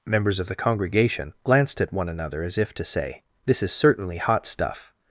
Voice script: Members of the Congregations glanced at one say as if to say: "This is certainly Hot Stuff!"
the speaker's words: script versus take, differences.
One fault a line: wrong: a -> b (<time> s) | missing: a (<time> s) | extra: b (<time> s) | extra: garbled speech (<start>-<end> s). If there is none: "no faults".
wrong: Congregations -> Congregation (0.6 s)
wrong: say -> another (2.1 s)